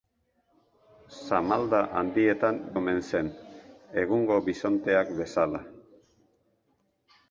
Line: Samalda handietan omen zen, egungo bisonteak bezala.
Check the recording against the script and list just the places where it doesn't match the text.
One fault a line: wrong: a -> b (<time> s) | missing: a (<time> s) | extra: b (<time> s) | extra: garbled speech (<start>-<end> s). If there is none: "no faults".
no faults